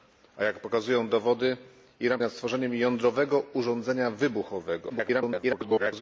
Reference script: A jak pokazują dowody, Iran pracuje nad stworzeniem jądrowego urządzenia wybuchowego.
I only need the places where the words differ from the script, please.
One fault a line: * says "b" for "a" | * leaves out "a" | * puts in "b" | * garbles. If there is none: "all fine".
* leaves out "pracuje"
* garbles